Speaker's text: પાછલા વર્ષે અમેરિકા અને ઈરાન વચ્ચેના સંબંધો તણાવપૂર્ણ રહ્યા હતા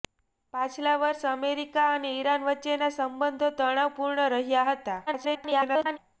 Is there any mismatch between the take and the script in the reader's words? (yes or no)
yes